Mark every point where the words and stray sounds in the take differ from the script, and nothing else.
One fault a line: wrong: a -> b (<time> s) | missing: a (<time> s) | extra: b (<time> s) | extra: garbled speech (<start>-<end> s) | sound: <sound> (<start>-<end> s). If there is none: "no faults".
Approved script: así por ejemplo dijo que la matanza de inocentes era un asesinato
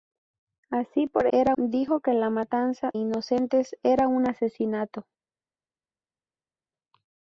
wrong: ejemplo -> era (1.3 s)
missing: de (2.9 s)